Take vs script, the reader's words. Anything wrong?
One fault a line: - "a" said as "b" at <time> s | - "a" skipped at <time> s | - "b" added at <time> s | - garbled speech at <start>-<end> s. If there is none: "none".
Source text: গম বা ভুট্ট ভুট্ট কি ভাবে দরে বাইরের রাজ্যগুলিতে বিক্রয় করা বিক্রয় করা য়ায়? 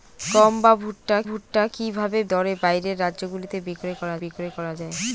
none